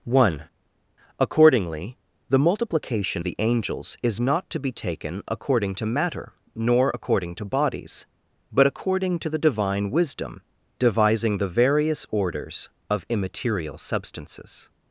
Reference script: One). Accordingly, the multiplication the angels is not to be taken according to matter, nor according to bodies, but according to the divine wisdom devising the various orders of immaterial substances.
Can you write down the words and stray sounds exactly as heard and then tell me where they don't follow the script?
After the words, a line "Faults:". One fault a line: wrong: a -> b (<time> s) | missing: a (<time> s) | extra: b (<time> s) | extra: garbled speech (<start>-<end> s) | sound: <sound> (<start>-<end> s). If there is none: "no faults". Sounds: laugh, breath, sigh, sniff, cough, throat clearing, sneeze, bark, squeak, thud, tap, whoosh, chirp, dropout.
One). Accordingly, the multiplication the angels is not to be taken according to matter, nor according to bodies, but according to the divine wisdom devising the various orders of immaterial substances.
Faults:
no faults